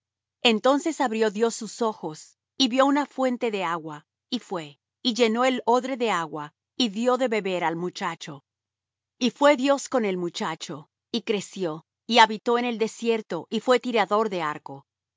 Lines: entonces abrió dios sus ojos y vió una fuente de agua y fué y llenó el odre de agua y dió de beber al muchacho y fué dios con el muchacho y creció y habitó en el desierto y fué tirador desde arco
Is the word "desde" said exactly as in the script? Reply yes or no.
no